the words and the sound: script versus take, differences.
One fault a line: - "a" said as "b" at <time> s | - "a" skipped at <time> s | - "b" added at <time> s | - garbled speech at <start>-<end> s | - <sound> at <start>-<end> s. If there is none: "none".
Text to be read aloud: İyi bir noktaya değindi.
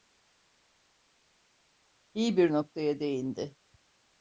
none